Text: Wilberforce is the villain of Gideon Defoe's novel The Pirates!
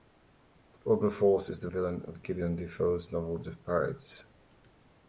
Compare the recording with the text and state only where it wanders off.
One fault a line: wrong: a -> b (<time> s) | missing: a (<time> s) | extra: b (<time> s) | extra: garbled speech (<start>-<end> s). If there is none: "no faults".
no faults